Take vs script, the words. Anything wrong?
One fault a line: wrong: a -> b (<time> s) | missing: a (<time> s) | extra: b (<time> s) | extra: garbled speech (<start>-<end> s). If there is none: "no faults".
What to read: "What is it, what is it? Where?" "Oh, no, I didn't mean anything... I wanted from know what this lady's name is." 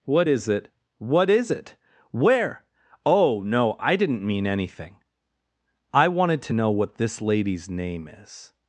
wrong: from -> to (6.4 s)